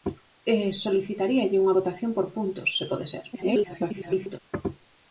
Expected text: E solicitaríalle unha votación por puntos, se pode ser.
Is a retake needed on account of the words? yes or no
yes